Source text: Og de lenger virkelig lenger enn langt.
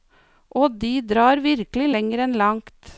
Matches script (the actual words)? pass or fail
fail